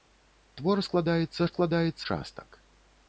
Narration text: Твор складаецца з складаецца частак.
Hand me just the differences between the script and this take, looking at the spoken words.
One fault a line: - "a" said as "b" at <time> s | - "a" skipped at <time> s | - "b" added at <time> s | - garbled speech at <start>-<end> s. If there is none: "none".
none